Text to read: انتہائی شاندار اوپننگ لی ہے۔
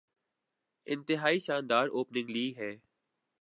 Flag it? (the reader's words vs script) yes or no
no